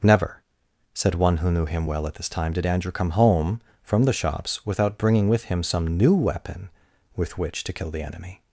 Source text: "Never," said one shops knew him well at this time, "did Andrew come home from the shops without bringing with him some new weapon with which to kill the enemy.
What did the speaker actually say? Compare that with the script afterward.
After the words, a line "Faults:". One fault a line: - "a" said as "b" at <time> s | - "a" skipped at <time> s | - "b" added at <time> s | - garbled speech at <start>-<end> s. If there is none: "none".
"Never," said one who knew him well at this time, "did Andrew come home from the shops without bringing with him some new weapon with which to kill the enemy.
Faults:
- "shops" said as "who" at 1.4 s